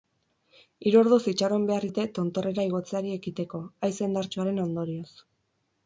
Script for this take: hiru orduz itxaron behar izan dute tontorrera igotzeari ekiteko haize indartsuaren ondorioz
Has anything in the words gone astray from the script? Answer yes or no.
yes